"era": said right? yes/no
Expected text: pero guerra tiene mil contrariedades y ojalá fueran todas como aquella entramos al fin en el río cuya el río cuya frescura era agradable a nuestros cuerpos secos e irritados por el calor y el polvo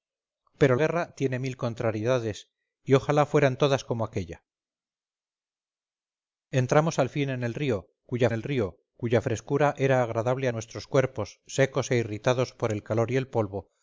yes